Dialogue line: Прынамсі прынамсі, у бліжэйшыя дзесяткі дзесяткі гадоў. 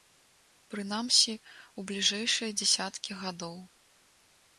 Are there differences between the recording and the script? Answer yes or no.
yes